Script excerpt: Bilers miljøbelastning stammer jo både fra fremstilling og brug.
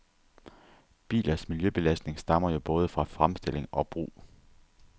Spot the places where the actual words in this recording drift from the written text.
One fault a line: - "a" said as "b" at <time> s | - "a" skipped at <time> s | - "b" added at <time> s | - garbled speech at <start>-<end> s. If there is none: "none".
none